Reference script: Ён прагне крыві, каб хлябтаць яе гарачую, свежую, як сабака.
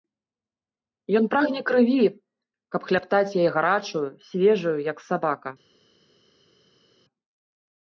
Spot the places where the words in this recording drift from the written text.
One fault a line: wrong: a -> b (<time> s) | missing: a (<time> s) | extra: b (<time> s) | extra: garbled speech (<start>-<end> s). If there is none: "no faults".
no faults